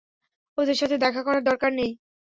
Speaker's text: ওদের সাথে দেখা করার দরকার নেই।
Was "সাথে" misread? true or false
false